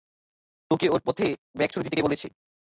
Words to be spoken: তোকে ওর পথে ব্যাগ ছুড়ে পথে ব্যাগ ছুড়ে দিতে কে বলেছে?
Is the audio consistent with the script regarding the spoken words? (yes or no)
no